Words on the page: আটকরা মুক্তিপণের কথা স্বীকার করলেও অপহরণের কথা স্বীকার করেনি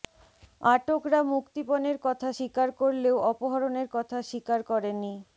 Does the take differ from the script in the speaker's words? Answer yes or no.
no